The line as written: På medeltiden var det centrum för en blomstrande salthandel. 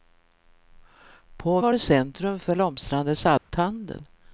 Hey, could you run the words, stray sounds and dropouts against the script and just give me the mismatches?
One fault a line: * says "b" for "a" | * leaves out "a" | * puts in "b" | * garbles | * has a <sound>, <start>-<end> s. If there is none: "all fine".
* leaves out "medeltiden"
* leaves out "en"
* has a dropout, 3.4-3.5 s